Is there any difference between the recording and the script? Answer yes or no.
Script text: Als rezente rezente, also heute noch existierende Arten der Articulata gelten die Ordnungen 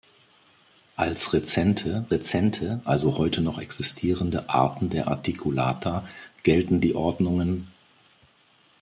no